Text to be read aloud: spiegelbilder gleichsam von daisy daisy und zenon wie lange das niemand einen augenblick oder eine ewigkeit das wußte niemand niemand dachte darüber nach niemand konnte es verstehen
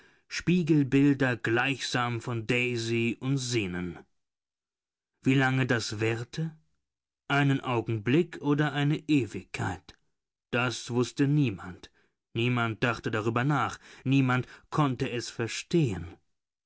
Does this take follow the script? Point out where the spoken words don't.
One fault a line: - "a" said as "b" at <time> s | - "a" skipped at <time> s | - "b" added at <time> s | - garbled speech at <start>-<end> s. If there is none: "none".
- "daisy" skipped at 3.2 s
- "niemand" said as "währte" at 6.0 s